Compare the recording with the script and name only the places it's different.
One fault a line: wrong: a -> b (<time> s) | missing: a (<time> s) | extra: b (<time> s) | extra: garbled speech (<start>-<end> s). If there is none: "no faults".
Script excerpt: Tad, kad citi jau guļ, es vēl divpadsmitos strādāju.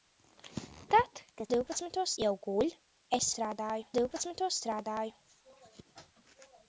wrong: citi -> divpadsmitos (1.5 s)
wrong: vēl -> strādāju (3.3 s)